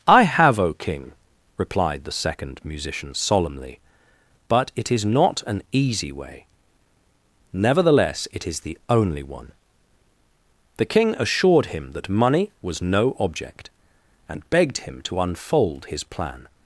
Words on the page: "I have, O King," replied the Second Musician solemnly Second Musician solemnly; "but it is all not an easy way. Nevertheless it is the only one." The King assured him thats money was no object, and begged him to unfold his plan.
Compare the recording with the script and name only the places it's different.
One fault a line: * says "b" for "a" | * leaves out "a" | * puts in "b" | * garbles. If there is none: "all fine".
* leaves out "Second Musician solemnly"
* leaves out "all"
* says "that" for "thats"